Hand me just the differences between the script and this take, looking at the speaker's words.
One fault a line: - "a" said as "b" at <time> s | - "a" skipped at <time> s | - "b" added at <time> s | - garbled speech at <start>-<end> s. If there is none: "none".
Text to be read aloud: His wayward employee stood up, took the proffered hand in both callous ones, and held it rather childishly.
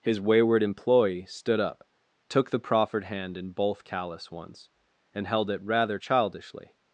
none